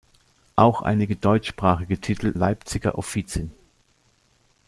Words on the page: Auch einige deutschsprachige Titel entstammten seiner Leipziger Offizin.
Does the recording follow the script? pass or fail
fail